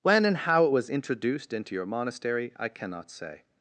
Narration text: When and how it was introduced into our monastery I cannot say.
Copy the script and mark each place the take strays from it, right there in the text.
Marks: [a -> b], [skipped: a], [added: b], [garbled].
When and how it was introduced into [our -> your] monastery I cannot say.